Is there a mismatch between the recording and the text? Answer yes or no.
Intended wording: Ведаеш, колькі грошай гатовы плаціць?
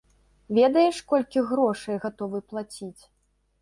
no